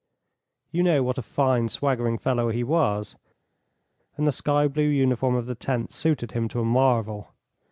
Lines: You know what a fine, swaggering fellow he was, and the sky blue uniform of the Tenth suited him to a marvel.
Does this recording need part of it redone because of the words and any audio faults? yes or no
no